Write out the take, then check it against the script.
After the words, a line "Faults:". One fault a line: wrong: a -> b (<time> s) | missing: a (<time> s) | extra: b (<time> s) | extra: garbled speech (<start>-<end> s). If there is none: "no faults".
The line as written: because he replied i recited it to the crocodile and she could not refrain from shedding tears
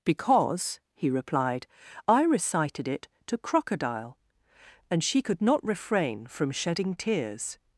because he replied i recited it to crocodile and she could not refrain from shedding tears
Faults:
missing: the (3.4 s)